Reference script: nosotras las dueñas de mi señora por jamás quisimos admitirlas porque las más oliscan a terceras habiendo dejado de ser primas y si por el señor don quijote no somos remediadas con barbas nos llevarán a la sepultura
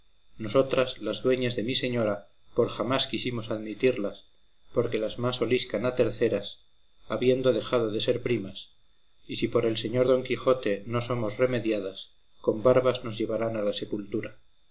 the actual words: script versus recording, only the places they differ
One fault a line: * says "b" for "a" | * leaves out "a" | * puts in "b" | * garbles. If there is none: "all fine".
all fine